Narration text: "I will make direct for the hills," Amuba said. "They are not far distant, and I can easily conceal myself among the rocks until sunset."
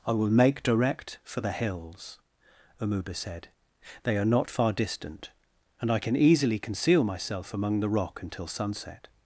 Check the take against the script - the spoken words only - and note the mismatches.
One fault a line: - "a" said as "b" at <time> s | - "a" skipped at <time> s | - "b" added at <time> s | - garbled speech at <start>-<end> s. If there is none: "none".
- "rocks" said as "rock" at 7.9 s